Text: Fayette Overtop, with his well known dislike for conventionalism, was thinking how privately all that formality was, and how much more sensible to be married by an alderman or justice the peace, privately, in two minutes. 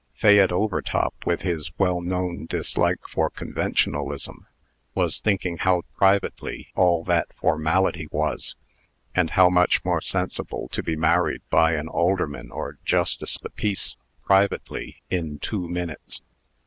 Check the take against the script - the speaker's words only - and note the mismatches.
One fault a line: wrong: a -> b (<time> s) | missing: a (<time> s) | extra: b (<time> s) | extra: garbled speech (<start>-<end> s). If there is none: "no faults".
no faults